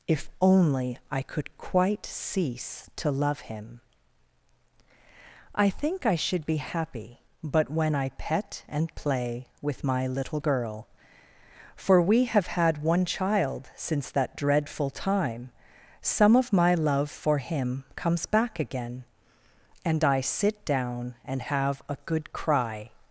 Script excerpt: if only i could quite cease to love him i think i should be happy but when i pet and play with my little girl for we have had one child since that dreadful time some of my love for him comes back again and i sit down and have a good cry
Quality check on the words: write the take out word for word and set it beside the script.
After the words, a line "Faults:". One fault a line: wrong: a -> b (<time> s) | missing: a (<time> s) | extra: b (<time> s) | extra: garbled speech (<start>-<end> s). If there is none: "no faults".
if only i could quite cease to love him i think i should be happy but when i pet and play with my little girl for we have had one child since that dreadful time some of my love for him comes back again and i sit down and have a good cry
Faults:
no faults